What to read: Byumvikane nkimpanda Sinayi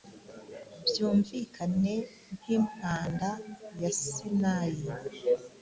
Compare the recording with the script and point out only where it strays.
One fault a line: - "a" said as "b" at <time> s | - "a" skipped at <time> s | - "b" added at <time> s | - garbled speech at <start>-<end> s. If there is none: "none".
- "ya" added at 3.8 s